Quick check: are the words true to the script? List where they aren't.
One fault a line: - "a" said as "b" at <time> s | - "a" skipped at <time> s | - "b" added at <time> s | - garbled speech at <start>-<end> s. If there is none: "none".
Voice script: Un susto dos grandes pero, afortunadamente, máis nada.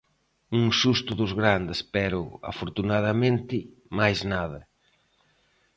none